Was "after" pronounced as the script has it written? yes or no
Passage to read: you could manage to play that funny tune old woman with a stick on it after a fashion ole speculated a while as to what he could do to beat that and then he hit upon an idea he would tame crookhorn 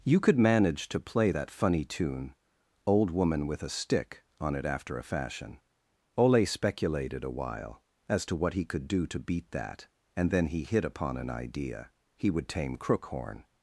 yes